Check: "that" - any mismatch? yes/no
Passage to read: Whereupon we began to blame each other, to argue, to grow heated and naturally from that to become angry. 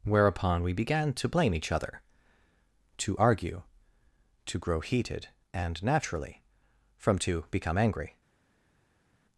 yes